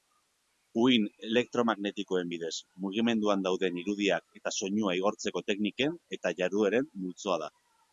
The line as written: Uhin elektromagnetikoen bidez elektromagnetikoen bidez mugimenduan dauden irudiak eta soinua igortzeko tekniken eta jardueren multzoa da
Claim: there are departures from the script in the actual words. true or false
true